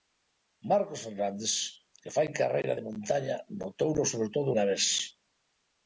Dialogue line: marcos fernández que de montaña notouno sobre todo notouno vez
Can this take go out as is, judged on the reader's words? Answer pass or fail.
fail